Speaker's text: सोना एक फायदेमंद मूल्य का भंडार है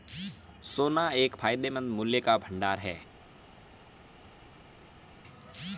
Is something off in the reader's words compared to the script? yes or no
no